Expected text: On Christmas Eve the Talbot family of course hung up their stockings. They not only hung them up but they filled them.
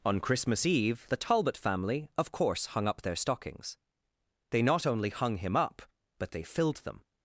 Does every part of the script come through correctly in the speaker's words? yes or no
no